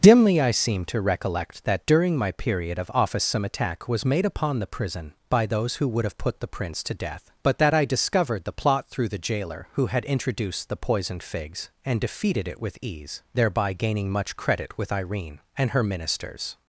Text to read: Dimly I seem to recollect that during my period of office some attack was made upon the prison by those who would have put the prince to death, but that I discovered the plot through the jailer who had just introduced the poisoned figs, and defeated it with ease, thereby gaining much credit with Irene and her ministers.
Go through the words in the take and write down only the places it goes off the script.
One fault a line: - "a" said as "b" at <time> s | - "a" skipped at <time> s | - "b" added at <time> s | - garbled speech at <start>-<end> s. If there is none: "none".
- "just" skipped at 10.0 s